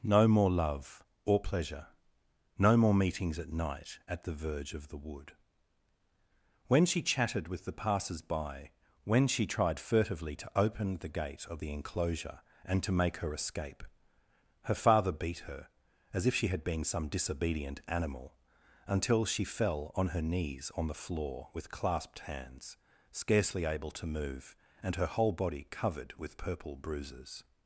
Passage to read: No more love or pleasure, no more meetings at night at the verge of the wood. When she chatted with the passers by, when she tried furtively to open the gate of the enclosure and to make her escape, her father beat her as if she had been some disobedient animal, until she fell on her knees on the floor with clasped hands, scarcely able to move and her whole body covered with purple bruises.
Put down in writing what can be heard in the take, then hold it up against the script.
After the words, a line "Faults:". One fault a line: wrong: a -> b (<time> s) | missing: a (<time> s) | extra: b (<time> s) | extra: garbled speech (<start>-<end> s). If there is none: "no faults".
No more love or pleasure, no more meetings at night at the verge of the wood. When she chatted with the passers by, when she tried furtively to open the gate of the enclosure and to make her escape, her father beat her as if she had been some disobedient animal, until she fell on her knees on the floor with clasped hands, scarcely able to move and her whole body covered with purple bruises.
Faults:
no faults